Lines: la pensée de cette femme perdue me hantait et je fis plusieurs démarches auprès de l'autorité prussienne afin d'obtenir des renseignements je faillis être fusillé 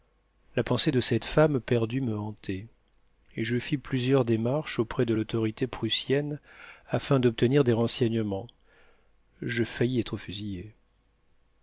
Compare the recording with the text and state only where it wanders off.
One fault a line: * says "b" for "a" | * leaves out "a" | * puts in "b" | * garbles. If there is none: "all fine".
all fine